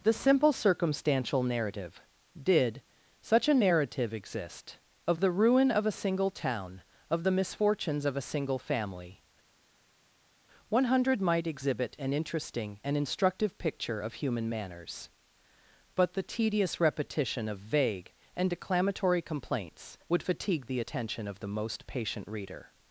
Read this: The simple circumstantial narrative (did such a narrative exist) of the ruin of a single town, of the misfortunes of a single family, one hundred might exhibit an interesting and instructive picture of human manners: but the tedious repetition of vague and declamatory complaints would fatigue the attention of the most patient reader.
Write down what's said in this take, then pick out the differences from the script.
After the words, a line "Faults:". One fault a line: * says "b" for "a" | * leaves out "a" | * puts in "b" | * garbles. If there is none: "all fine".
The simple circumstantial narrative (did such a narrative exist) of the ruin of a single town, of the misfortunes of a single family, one hundred might exhibit an interesting and instructive picture of human manners: but the tedious repetition of vague and declamatory complaints would fatigue the attention of the most patient reader.
Faults:
all fine